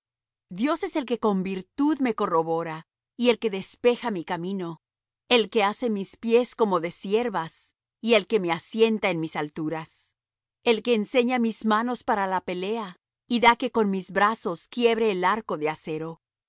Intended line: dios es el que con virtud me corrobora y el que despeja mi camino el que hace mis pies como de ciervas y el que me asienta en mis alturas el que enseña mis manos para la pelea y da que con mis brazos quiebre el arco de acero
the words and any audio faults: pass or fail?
pass